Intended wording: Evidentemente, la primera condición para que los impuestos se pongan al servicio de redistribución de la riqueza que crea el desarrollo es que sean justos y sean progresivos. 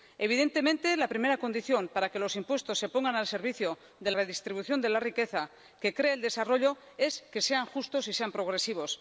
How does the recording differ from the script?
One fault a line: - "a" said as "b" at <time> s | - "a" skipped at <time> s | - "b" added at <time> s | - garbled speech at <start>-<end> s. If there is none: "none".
none